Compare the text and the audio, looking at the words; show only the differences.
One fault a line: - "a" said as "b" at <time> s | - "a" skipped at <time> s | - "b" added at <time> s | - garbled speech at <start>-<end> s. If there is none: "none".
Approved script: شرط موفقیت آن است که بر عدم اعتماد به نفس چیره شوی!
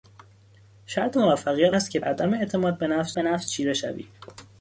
- "آن" skipped at 1.7 s
- "بر" skipped at 2.0 s
- "به نفس" added at 3.1 s